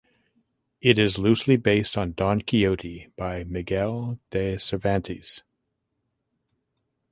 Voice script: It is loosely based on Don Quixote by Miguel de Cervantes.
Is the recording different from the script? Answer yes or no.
no